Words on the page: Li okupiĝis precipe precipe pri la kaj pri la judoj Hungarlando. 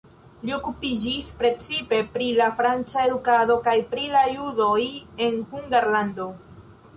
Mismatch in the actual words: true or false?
true